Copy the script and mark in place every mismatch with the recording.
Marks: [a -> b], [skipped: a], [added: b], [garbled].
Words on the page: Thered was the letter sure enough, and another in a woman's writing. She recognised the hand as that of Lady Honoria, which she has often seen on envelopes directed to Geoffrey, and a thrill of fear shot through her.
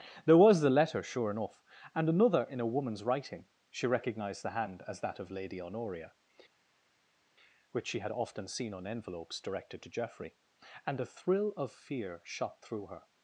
[Thered -> There] was the letter sure enough, and another in a woman's writing. She recognised the hand as that of Lady Honoria, which she [has -> had] often seen on envelopes directed to Geoffrey, and a thrill of fear shot through her.